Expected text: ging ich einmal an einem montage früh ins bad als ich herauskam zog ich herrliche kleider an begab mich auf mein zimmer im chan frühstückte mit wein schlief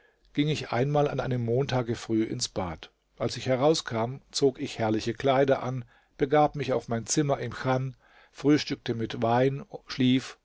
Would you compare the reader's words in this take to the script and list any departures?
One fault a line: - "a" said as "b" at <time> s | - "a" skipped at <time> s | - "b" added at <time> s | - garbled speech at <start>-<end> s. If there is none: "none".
none